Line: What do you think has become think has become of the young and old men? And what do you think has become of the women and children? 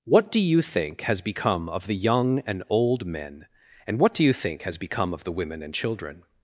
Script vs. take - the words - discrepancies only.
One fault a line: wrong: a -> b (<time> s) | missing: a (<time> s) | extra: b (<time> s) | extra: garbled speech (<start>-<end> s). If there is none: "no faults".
missing: think has become (1.7 s)